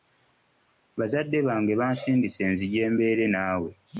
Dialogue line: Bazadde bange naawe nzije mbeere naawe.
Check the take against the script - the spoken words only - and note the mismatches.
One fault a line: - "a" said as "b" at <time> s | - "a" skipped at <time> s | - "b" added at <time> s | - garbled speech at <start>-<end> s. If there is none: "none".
- "naawe" said as "bansindise" at 1.8 s